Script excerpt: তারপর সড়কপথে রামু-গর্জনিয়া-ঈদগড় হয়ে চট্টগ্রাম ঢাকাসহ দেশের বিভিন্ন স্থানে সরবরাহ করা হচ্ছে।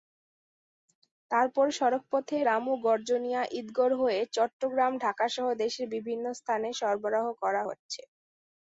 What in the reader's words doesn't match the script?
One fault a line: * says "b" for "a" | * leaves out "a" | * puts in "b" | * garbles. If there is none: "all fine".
all fine